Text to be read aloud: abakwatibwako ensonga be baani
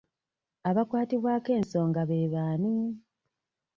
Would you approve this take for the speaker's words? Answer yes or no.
yes